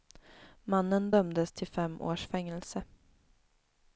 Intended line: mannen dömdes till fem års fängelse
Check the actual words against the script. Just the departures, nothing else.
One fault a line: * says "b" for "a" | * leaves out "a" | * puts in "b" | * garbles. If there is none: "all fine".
all fine